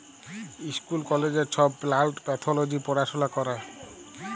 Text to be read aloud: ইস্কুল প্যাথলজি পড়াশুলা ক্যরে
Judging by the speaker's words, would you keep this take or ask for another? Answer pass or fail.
fail